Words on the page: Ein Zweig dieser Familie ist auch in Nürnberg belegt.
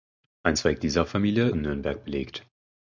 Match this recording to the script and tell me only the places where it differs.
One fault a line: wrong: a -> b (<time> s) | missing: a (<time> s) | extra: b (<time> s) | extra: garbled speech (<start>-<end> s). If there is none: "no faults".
missing: ist auch (1.5 s)